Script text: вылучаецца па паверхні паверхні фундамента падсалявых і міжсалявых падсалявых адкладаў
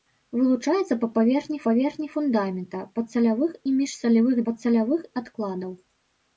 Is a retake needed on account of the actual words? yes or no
no